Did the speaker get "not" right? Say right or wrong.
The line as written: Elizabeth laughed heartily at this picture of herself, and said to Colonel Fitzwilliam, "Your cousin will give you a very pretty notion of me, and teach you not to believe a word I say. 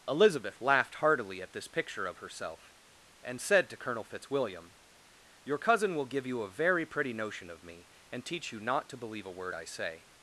right